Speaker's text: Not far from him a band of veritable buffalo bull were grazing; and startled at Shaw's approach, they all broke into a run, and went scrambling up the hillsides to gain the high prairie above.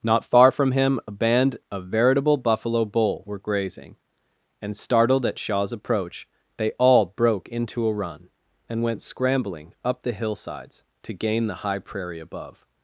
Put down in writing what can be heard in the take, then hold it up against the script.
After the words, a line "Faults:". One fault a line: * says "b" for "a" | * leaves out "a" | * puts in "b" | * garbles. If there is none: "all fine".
Not far from him a band of veritable buffalo bull were grazing; and startled at Shaw's approach, they all broke into a run, and went scrambling up the hillsides to gain the high prairie above.
Faults:
all fine